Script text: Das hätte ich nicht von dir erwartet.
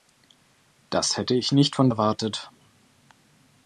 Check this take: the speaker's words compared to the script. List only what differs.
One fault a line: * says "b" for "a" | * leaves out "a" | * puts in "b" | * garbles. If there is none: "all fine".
* leaves out "dir"